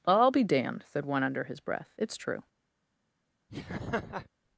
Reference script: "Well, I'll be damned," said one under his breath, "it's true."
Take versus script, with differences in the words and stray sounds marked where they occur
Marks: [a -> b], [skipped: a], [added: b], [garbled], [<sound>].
[skipped: "Well,] I'll be damned," said one under his breath, "it's true." [laugh]